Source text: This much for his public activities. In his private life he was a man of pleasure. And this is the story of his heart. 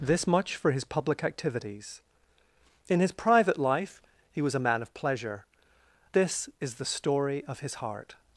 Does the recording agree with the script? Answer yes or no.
no